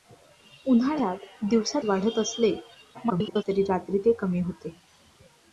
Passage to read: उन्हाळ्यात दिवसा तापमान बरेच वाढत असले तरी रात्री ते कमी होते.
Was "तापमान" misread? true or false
true